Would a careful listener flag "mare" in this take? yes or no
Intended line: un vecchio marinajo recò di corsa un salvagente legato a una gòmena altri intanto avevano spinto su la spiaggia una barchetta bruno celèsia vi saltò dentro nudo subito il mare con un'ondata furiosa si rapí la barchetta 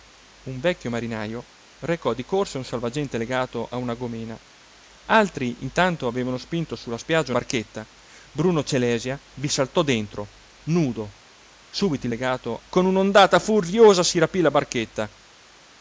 yes